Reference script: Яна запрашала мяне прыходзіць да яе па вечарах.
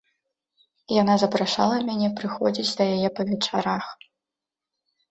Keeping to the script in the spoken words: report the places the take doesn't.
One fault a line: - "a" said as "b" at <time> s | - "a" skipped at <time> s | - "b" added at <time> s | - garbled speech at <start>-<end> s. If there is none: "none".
none